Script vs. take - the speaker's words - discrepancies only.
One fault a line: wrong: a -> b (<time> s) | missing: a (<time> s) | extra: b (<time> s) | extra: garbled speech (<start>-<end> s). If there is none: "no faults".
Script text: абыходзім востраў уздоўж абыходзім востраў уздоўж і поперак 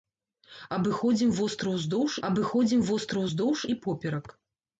no faults